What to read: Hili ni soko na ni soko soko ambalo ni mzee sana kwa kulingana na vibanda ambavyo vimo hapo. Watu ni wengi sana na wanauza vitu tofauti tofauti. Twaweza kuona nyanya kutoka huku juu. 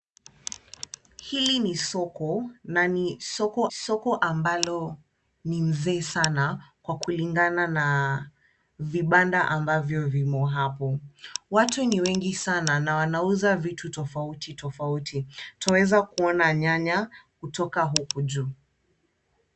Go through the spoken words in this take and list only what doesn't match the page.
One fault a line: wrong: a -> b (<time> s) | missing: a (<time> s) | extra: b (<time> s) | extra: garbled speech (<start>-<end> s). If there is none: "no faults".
no faults